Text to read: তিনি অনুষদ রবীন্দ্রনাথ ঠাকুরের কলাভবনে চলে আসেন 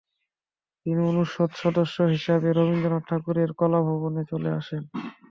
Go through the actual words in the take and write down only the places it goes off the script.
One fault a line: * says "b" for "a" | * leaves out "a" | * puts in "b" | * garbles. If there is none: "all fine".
* puts in "সদস্য হিসাবে"